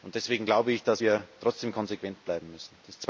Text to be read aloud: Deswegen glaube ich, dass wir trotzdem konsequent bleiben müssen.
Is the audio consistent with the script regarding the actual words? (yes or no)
yes